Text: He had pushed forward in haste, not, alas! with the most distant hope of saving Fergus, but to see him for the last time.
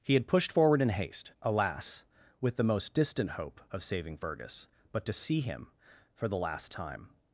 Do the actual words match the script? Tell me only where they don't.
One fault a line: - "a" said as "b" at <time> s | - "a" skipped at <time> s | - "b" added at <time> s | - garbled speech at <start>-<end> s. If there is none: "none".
- "not" skipped at 1.3 s